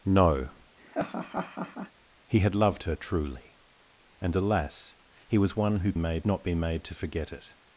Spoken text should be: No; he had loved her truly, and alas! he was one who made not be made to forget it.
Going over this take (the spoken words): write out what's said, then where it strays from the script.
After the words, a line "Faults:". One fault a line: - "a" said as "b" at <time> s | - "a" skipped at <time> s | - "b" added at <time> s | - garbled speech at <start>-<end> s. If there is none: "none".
No; he had loved her truly, and alas! he was one who made not be made to forget it.
Faults:
none